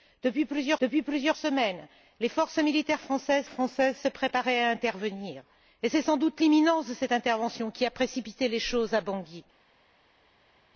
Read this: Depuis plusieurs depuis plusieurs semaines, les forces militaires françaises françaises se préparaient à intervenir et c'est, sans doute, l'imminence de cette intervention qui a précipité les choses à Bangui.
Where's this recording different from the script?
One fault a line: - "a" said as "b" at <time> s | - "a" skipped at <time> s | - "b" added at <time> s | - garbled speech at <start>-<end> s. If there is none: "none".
none